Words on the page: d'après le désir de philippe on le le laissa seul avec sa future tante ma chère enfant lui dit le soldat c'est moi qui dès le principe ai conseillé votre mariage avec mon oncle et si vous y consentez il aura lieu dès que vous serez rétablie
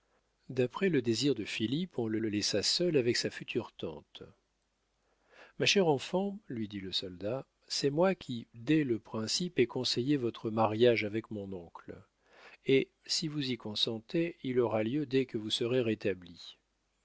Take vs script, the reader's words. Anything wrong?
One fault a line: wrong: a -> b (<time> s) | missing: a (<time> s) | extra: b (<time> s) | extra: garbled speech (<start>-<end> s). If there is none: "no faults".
no faults